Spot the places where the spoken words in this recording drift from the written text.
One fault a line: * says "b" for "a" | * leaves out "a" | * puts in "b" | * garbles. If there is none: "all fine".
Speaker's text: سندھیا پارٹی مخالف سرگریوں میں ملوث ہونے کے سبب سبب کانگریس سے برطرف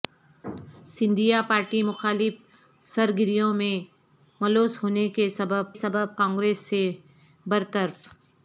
all fine